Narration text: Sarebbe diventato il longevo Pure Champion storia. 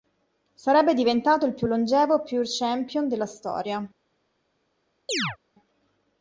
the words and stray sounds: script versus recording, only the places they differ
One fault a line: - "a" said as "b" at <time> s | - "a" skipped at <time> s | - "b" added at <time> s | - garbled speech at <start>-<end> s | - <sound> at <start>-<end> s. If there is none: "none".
- "più" added at 1.5 s
- "della" added at 3.1 s
- chirp at 5.1-5.4 s